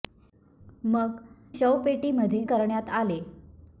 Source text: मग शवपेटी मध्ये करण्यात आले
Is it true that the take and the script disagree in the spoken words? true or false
false